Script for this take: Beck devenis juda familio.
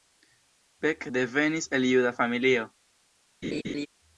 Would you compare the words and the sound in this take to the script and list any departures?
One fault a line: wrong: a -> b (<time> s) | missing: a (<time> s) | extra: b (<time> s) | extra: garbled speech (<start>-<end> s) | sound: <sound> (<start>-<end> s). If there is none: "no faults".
extra: el (1.7 s)
sound: laugh (3.4-3.9 s)